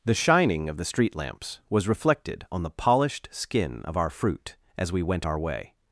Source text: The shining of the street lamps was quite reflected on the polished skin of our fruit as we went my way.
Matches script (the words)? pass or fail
fail